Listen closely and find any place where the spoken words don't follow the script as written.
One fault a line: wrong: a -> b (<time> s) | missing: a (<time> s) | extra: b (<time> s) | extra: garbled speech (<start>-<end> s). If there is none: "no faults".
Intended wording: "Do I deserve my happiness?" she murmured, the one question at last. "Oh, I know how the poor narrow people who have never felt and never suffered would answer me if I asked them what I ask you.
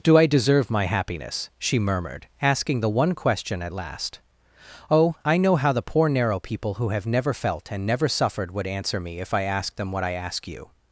extra: asking (2.4 s)